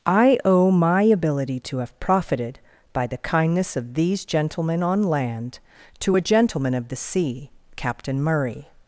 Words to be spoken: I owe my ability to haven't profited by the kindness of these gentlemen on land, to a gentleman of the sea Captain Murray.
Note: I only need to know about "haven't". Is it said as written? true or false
false